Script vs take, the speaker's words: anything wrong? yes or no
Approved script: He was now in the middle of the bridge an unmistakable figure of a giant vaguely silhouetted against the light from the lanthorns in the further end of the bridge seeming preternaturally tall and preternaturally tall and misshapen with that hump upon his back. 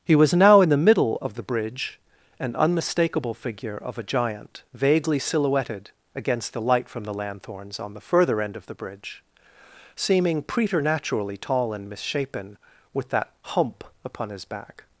yes